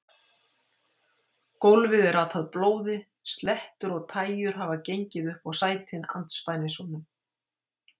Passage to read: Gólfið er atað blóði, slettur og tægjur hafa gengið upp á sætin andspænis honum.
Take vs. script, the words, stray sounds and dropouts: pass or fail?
pass